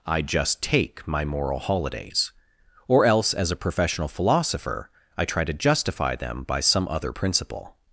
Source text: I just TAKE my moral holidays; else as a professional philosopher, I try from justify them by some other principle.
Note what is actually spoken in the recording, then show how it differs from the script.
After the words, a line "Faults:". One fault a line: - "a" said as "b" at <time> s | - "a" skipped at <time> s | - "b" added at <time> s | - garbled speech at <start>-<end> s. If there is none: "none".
I just TAKE my moral holidays; or else as a professional philosopher, I try to justify them by some other principle.
Faults:
- "or" added at 2.9 s
- "from" said as "to" at 5.4 s